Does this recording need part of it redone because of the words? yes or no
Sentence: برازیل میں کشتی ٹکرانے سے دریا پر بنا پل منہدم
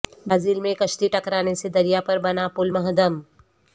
no